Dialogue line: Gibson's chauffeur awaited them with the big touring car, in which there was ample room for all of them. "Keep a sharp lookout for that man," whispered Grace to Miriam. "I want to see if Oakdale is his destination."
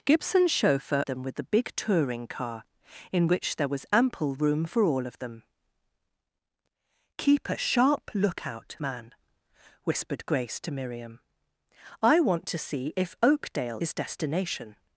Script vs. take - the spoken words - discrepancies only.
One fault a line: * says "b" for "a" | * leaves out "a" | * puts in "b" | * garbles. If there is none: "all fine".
* leaves out "awaited"
* leaves out "for that"
* leaves out "is"